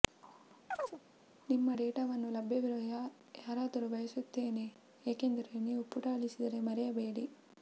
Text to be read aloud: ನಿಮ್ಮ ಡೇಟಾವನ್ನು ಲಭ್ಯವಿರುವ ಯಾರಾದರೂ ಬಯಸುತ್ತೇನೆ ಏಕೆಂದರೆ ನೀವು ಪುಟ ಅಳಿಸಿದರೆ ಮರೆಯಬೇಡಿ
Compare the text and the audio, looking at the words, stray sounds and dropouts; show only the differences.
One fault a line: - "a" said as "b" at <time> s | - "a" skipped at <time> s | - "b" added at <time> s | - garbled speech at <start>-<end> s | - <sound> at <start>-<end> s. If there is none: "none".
- chirp at 0.7-1.0 s